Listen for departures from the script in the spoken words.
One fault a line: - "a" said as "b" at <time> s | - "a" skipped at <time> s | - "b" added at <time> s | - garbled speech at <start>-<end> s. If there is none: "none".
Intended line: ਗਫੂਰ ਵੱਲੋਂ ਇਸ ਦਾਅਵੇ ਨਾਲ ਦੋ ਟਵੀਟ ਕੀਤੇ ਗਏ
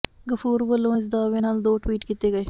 none